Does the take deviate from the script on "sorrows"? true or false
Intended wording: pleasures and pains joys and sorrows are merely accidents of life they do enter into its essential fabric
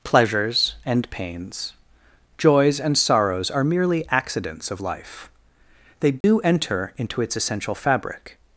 false